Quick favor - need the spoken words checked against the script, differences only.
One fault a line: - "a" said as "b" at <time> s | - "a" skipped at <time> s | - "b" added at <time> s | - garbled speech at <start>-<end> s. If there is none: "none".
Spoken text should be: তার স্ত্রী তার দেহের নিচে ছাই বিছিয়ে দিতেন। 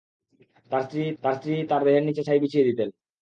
- "স্ত্রী তার" added at 1.4 s